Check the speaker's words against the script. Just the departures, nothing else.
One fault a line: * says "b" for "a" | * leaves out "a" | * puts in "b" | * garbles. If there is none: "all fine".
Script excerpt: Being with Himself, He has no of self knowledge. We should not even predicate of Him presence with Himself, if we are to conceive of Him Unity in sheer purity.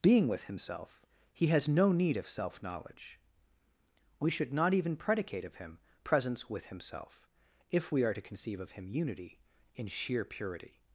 * puts in "need"